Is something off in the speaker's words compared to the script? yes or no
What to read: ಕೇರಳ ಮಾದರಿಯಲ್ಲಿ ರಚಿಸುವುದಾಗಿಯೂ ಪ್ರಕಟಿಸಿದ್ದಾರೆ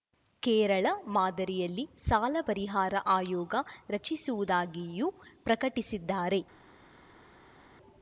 yes